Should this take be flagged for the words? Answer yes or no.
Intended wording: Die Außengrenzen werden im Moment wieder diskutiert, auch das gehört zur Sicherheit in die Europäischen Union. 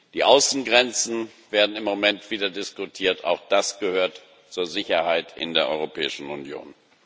yes